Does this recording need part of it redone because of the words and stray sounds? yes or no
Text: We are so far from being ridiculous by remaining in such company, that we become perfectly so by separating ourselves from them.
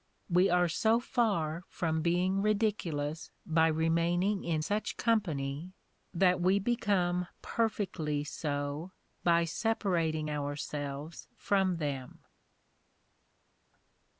no